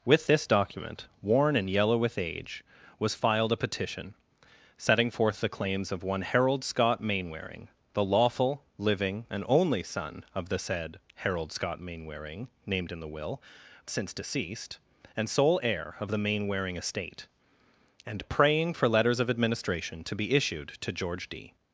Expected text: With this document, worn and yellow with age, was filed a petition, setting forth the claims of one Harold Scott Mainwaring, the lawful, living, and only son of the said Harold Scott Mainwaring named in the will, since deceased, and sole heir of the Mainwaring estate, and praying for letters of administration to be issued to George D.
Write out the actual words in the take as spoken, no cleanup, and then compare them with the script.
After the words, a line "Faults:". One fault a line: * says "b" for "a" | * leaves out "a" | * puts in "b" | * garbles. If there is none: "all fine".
With this document, worn and yellow with age, was filed a petition, setting forth the claims of one Harold Scott Mainwaring, the lawful, living, and only son of the said Harold Scott Mainwaring named in the will, since deceased, and sole heir of the Mainwaring estate, and praying for letters of administration to be issued to George D.
Faults:
all fine